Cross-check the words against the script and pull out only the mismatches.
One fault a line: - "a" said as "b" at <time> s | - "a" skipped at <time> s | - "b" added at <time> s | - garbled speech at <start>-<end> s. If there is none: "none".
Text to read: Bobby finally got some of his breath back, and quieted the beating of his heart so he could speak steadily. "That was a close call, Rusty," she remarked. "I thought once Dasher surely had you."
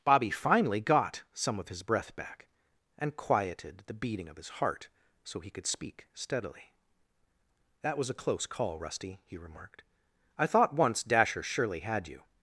- "she" said as "he" at 9.2 s